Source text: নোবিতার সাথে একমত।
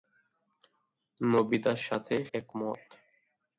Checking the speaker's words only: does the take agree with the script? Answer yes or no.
yes